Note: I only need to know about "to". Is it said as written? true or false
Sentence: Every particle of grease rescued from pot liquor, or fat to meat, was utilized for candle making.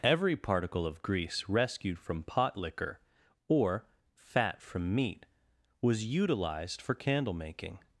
false